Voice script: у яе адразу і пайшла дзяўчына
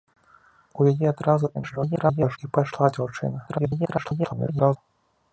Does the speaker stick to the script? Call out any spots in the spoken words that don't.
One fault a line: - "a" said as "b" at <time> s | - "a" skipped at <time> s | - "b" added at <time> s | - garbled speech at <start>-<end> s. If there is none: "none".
- garbled speech at 1.5-2.4 s
- garbled speech at 3.5-4.8 s